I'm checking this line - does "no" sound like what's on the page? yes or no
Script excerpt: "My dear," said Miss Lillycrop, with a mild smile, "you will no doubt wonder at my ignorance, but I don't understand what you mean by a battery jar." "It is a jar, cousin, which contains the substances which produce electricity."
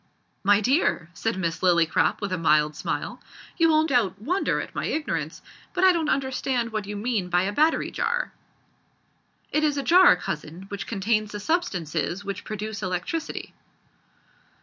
no